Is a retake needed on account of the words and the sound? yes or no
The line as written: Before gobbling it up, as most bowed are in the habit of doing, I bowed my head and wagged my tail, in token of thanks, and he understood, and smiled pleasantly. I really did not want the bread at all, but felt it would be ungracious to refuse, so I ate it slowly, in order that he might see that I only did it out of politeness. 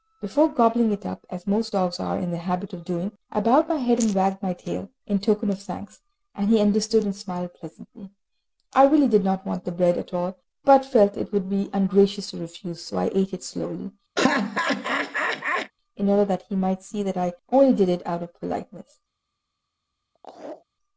yes